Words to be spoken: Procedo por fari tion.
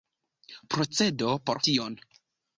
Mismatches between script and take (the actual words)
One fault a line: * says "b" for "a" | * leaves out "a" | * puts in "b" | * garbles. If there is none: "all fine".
* leaves out "fari"